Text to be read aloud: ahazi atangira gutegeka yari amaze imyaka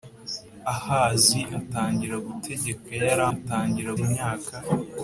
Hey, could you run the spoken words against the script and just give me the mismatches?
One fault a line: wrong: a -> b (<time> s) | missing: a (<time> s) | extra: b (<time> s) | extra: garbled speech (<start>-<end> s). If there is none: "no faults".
wrong: amaze -> atangira (3.3 s)